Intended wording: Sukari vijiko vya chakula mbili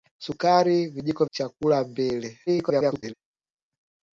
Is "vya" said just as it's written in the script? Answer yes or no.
no